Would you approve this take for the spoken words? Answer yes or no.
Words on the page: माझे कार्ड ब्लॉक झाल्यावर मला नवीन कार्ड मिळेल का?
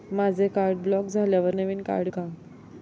no